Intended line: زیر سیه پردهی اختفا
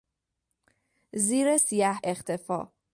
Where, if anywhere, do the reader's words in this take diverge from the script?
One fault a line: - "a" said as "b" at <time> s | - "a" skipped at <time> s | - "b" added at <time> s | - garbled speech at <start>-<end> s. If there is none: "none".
- "پردهی" skipped at 2.0 s